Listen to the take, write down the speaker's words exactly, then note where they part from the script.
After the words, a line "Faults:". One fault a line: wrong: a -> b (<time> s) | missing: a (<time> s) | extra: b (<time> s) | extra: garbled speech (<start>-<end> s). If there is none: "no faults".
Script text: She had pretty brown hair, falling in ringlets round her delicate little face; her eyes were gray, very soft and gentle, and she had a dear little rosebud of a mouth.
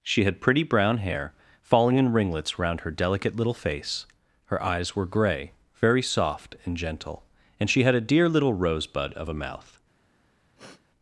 She had pretty brown hair, falling in ringlets round her delicate little face; her eyes were gray, very soft and gentle, and she had a dear little rosebud of a mouth.
Faults:
no faults